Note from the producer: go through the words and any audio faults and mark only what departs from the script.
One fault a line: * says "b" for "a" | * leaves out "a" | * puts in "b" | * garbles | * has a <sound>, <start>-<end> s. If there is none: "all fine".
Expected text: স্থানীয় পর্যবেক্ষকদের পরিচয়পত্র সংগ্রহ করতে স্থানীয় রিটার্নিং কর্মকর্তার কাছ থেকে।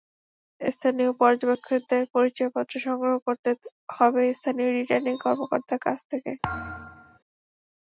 * puts in "হবে"
* has a thud, 6.4-7.2 s